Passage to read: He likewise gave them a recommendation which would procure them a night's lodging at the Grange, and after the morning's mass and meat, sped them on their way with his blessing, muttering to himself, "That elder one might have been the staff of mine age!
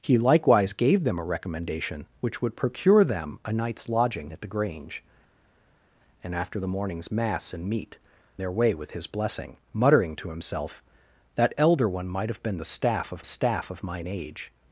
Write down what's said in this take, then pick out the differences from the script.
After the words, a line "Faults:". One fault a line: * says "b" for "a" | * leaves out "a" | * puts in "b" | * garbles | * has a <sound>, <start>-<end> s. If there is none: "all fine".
He likewise gave them a recommendation which would procure them a night's lodging at the Grange, and after the morning's mass and meat, their way with his blessing, muttering to himself, "That elder one might have been the staff of staff of mine age!
Faults:
* leaves out "sped them on"
* puts in "staff of"